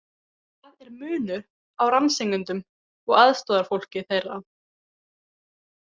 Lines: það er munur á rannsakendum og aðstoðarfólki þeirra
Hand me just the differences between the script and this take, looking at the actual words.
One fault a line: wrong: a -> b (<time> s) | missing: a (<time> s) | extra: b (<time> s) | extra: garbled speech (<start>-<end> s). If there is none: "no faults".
no faults